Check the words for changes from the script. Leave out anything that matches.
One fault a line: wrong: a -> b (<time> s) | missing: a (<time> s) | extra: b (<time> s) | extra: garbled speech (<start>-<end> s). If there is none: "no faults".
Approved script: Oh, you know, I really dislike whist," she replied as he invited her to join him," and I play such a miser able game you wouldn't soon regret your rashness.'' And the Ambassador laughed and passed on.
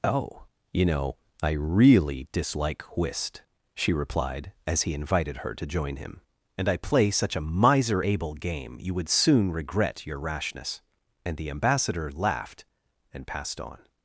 wrong: wouldn't -> would (8.9 s)